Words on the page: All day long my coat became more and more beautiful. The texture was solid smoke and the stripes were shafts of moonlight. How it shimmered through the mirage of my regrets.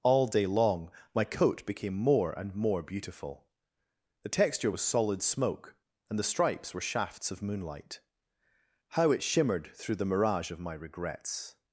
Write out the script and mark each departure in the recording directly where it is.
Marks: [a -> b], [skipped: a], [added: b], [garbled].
All day long my coat became more and more beautiful. The texture was solid smoke and the stripes were shafts of moonlight. How it shimmered through the mirage of my regrets.